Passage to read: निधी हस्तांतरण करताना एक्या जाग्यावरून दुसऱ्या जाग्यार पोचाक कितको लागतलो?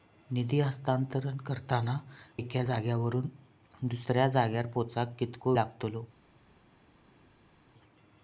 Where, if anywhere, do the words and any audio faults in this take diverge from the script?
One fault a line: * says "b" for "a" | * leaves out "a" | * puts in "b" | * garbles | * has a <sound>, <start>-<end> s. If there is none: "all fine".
all fine